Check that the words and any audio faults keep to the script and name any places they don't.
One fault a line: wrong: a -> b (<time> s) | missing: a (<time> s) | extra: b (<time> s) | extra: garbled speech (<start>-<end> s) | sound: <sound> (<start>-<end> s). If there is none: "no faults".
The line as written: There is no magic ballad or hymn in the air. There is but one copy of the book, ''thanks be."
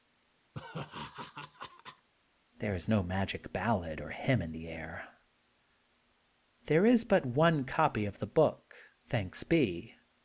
sound: laugh (0.5-2.1 s)